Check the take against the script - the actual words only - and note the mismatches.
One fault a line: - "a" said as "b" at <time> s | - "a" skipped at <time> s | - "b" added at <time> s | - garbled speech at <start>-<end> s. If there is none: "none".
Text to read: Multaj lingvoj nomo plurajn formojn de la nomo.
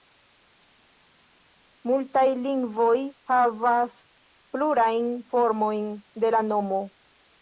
- "nomo" said as "havas" at 3.3 s